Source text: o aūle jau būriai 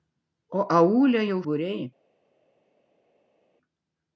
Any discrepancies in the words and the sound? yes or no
no